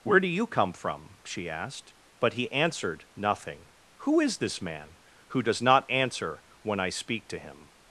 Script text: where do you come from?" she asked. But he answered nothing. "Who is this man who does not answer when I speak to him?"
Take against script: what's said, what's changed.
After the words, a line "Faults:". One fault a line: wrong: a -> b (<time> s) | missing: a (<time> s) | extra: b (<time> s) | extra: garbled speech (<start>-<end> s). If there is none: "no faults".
where do you come from?" she asked. But he answered nothing. "Who is this man who does not answer when I speak to him?"
Faults:
no faults